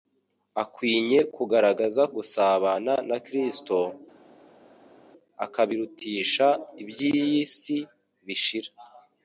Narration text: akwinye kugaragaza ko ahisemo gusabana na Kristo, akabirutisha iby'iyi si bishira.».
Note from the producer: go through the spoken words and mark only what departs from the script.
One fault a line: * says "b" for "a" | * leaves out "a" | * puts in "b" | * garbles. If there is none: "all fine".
* leaves out "ko ahisemo"